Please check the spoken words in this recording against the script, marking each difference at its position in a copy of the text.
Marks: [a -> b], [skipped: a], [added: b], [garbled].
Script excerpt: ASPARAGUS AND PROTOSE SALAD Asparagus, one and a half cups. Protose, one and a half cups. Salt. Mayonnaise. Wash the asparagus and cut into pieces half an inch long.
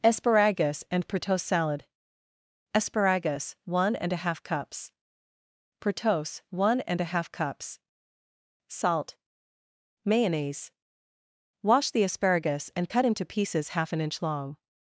ASPARAGUS AND PROTOSE SALAD Asparagus, one and a half cups. Protose, one and a half cups. Salt. Mayonnaise. Wash the asparagus and cut into pieces half an inch long.